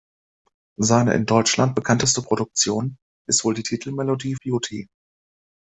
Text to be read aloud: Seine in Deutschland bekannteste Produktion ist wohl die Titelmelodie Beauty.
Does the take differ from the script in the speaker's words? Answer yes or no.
no